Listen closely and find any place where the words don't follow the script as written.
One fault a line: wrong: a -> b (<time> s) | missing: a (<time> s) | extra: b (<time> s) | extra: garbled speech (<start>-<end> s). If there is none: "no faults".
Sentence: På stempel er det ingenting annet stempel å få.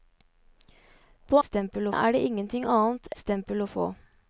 no faults